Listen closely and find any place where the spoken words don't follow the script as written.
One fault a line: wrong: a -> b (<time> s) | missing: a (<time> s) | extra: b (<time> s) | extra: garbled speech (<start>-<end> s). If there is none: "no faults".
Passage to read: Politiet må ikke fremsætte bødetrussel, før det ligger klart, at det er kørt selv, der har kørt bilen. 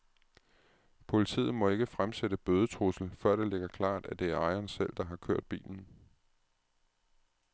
wrong: kørt -> ejeren (4.4 s)